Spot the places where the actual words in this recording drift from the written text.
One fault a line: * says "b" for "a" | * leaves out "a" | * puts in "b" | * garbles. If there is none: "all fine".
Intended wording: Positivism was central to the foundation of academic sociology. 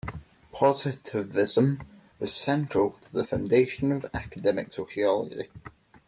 all fine